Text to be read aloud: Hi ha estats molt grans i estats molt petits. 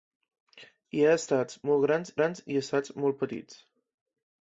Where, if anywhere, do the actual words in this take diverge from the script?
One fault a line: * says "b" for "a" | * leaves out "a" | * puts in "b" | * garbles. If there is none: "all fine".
* puts in "grans"